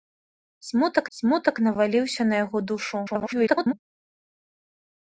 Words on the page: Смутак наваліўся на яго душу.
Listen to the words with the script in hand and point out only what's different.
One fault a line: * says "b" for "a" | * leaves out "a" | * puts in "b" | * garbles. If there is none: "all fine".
* puts in "смутак"
* garbles